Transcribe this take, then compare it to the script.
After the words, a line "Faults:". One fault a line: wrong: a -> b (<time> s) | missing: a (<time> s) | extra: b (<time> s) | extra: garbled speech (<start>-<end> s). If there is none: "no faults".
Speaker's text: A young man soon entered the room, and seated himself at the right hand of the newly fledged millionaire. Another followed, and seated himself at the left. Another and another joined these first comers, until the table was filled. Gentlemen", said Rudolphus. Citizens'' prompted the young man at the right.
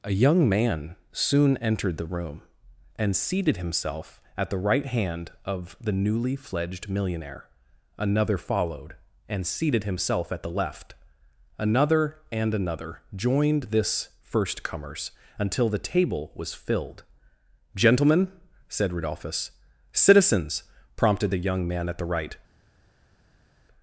A young man soon entered the room, and seated himself at the right hand of the newly fledged millionaire. Another followed, and seated himself at the left. Another and another joined this first comers, until the table was filled. Gentlemen", said Rudolphus. Citizens'' prompted the young man at the right.
Faults:
wrong: these -> this (13.7 s)